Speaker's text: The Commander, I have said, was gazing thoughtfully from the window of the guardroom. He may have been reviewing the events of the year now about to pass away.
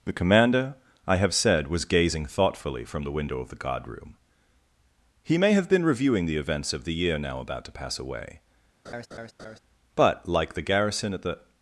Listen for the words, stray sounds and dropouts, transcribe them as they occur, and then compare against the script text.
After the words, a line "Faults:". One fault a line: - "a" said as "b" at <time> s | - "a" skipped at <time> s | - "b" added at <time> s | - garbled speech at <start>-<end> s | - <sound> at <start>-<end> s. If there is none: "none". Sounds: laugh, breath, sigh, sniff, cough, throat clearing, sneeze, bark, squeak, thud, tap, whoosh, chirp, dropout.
The Commander, I have said, was gazing thoughtfully from the window of the guardroom. He may have been reviewing the events of the year now about to pass away. But, like the garrison at the
Faults:
- laugh at 8.8-9.6 s
- "But like the garrison at the" added at 9.9 s